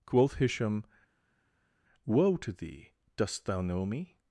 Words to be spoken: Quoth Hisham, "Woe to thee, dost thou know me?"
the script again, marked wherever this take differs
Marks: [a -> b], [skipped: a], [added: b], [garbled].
Quoth Hisham, "Woe to thee, dost thou know me?"